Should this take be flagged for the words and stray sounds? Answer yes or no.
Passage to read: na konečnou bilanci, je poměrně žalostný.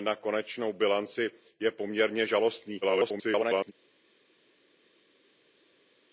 yes